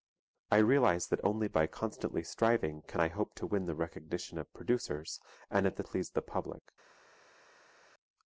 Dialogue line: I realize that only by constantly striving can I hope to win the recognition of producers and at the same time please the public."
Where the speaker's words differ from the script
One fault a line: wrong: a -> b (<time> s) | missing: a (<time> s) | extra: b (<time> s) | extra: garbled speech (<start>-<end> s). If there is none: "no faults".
missing: same time (5.8 s)